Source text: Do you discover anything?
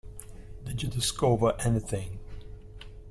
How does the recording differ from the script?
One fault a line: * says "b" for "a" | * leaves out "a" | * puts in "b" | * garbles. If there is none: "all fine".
* says "Did" for "Do"